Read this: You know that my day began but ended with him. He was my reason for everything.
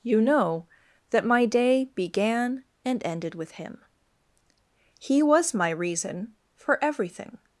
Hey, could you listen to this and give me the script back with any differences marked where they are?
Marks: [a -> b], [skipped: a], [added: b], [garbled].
You know that my day began [but -> and] ended with him. He was my reason for everything.